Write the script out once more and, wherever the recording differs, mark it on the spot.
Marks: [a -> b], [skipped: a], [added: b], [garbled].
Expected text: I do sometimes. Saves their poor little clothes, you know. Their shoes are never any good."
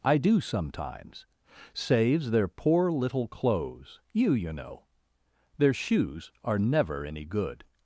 I do sometimes. Saves their poor little clothes, you [added: you] know. Their shoes are never any good."